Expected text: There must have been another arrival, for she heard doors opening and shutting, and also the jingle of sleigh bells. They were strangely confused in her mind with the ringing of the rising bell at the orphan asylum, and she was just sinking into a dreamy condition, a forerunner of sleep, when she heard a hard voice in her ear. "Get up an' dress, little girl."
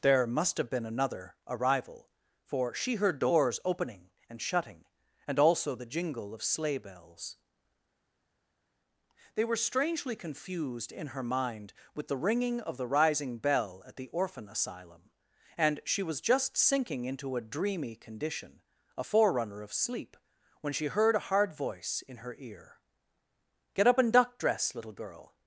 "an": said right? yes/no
no